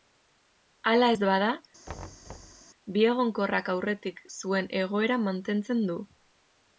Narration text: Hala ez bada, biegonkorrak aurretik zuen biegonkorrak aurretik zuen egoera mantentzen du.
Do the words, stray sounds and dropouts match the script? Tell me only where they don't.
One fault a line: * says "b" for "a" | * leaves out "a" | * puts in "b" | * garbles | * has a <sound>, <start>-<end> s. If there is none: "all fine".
* has a thud, 1.9-2.6 s
* leaves out "biegonkorrak aurretik zuen"